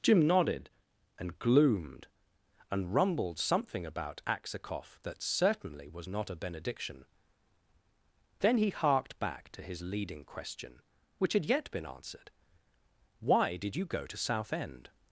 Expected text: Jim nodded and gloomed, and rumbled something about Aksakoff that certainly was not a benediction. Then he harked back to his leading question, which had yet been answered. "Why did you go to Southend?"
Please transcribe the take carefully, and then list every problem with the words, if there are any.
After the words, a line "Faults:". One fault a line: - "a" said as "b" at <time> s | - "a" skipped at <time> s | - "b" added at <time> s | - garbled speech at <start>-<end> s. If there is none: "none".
Jim nodded and gloomed, and rumbled something about Aksakoff that certainly was not a benediction. Then he harked back to his leading question, which had yet been answered. "Why did you go to Southend?"
Faults:
none